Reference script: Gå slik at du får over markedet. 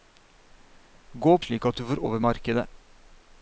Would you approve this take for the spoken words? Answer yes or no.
yes